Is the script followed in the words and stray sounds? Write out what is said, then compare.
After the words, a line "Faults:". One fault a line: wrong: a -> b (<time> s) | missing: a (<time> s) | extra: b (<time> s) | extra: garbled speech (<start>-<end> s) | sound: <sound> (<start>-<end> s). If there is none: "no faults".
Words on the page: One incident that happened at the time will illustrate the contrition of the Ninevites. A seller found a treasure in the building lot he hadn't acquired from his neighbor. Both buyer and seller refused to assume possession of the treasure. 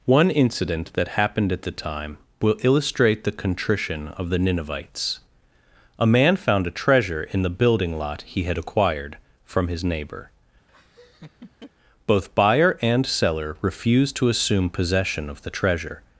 One incident that happened at the time will illustrate the contrition of the Ninevites. A man found a treasure in the building lot he had acquired from his neighbor. Both buyer and seller refused to assume possession of the treasure.
Faults:
wrong: seller -> man (6.1 s)
wrong: hadn't -> had (8.4 s)
sound: laugh (10.7-11.7 s)